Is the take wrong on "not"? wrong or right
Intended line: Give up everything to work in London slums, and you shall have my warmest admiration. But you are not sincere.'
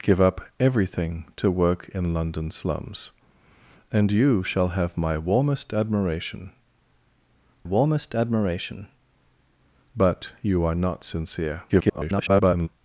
right